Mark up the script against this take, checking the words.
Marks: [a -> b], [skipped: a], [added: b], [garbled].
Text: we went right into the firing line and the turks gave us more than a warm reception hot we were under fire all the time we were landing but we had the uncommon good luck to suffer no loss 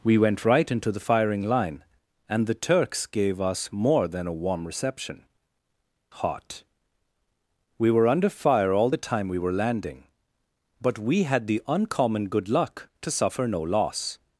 we went right into the firing line and the turks gave us more than a warm reception hot we were under fire all the time we were landing but we had the uncommon good luck to suffer no loss